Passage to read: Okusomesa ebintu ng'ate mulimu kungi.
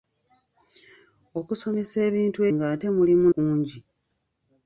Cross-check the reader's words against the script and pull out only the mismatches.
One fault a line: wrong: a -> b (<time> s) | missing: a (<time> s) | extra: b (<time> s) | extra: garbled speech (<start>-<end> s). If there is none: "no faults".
no faults